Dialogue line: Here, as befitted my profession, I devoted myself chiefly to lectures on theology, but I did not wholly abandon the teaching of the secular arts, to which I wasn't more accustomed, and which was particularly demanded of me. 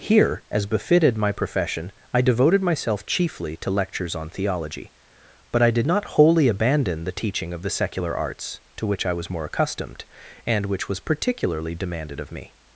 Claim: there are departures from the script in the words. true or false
true